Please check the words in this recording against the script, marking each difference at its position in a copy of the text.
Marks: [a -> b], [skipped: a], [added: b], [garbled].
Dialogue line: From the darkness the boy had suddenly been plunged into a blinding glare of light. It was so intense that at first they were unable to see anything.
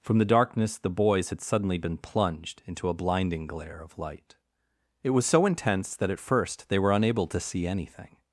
From the darkness the [boy -> boys] had suddenly been plunged into a blinding glare of light. It was so intense that at first they were unable to see anything.